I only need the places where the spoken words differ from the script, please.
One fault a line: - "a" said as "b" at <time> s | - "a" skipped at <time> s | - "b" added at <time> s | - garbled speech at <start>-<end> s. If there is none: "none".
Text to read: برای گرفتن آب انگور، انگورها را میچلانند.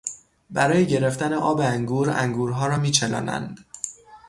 none